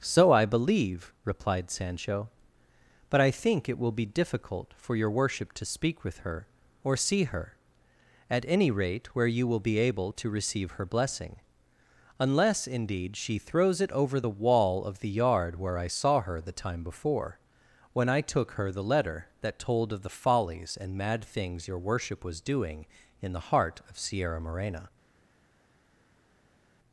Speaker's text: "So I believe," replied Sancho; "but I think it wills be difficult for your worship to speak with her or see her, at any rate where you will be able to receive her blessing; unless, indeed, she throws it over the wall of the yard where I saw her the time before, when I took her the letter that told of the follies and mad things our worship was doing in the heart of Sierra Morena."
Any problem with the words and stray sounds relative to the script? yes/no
yes